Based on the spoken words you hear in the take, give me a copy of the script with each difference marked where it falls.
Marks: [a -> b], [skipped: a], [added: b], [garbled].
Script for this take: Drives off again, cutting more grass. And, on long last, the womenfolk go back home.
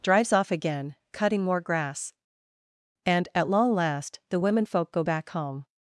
Drives off again, cutting more grass. And, [on -> at] long last, the womenfolk go back home.